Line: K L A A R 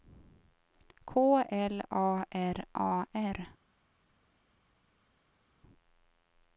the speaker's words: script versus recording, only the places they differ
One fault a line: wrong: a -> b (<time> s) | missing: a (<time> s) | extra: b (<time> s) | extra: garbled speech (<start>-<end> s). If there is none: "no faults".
extra: R (2.3 s)